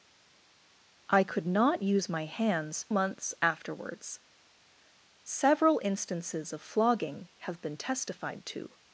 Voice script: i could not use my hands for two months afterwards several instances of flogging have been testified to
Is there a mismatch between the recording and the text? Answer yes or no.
yes